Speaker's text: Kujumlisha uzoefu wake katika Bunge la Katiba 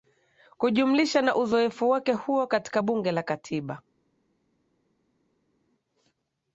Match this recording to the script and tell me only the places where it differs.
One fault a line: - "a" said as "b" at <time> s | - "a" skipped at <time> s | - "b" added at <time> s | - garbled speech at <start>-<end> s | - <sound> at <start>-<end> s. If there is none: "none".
- "na" added at 1.2 s
- "huo" added at 2.1 s